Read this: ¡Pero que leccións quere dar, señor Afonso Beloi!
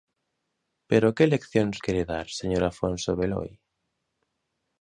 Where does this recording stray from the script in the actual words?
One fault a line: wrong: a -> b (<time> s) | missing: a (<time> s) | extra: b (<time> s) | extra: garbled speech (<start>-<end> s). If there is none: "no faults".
no faults